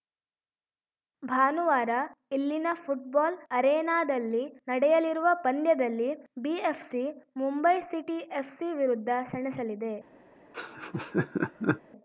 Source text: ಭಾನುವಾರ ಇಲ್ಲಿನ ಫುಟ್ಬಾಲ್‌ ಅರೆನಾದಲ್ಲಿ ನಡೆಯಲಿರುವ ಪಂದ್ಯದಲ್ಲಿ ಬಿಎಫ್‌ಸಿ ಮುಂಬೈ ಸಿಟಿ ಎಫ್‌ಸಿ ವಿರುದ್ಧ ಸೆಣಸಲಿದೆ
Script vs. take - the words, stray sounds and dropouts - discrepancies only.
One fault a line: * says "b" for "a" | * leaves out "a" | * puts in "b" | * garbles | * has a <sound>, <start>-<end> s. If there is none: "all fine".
* has a laugh, 10.5-11.8 s